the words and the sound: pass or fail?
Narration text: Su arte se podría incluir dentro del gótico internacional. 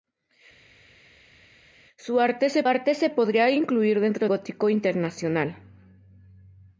fail